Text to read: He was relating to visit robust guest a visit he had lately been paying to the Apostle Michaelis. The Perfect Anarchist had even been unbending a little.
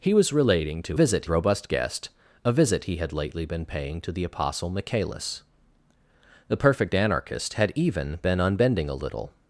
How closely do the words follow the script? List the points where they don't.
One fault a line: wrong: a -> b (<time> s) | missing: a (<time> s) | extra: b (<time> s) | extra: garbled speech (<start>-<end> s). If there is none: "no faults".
no faults